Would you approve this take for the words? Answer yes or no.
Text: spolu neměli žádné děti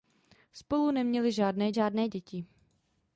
no